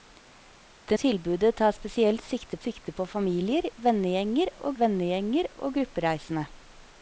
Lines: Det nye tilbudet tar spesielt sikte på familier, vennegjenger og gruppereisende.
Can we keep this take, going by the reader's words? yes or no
no